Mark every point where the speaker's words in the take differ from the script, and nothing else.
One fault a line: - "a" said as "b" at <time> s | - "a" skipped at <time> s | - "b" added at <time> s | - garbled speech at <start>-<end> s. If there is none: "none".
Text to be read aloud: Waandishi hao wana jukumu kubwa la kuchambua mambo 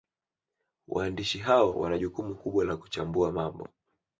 none